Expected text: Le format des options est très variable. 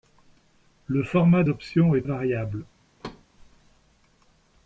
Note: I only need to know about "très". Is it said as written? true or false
false